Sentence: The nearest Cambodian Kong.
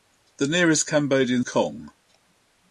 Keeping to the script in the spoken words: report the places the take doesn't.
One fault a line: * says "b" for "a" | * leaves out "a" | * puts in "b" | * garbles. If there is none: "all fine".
all fine